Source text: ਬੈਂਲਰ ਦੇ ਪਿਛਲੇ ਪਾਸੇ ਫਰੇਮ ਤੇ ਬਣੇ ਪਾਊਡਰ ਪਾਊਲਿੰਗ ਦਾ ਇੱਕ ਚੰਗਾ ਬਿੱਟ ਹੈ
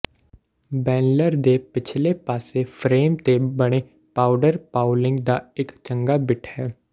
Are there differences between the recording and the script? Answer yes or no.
no